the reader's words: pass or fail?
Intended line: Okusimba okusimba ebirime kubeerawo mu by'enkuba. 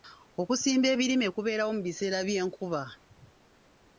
fail